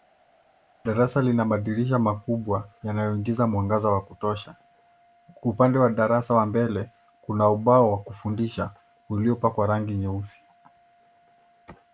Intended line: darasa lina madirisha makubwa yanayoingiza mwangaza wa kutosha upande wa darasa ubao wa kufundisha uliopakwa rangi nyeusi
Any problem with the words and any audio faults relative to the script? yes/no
yes